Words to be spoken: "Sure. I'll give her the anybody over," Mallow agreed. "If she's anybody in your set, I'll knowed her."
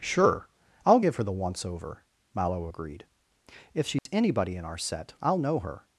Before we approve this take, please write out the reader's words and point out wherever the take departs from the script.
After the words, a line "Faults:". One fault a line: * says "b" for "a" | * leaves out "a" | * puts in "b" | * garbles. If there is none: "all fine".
"Sure. I'll give her the once over," Mallow agreed. "If she's anybody in our set, I'll know her."
Faults:
* says "once" for "anybody"
* says "our" for "your"
* says "know" for "knowed"